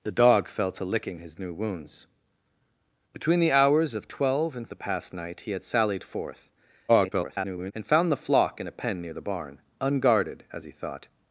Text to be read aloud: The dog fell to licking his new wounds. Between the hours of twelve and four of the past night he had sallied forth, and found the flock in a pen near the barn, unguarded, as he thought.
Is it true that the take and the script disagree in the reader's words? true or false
true